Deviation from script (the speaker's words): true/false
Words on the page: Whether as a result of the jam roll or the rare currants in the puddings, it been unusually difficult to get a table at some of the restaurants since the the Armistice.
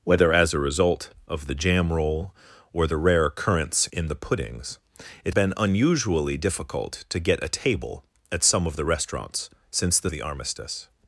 false